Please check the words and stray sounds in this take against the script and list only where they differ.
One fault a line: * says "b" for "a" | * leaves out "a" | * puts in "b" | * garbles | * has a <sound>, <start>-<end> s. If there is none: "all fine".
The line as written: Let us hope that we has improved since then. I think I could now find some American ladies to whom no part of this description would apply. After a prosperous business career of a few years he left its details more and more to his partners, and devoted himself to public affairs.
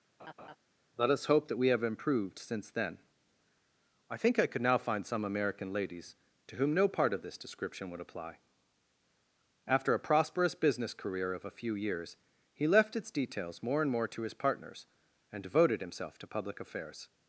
* has a laugh, 0.2-0.6 s
* says "have" for "has"